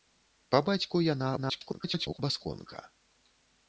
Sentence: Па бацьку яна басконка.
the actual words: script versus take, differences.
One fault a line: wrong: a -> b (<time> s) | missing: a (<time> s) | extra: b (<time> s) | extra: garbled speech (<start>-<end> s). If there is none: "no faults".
extra: garbled speech (1.4-2.2 s)